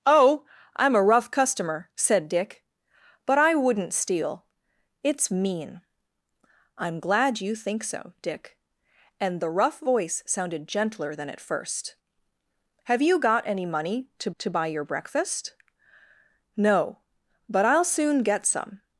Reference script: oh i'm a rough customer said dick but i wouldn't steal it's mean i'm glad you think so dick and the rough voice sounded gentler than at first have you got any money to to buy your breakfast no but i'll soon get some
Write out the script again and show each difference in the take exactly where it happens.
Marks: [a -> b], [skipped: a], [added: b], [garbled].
oh i'm a rough customer said dick but i wouldn't steal it's mean i'm glad you think so dick and the rough voice sounded gentler than at first have you got any money to to buy your breakfast no but i'll soon get some